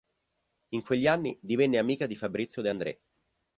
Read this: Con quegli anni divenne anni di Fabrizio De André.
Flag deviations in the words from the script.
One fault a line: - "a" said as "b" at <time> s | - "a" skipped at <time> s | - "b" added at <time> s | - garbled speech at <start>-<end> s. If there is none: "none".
- "Con" said as "In" at 0.7 s
- "anni" said as "amica" at 1.8 s